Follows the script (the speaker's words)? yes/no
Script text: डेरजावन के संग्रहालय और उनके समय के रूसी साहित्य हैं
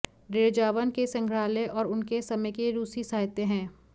yes